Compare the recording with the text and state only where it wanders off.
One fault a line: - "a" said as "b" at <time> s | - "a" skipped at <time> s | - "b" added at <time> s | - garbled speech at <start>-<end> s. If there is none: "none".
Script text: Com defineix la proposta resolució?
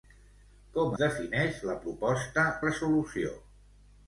none